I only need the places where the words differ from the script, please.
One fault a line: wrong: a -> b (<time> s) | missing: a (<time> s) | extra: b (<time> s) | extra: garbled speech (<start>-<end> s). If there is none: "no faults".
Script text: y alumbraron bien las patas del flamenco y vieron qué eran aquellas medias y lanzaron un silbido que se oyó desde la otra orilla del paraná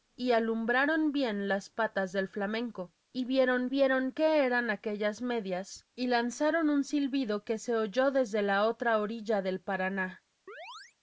extra: vieron (3.7 s)